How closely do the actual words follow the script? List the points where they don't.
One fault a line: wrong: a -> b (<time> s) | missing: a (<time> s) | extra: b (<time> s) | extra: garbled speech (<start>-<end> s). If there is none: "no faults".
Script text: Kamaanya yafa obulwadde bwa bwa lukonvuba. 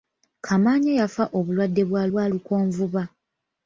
no faults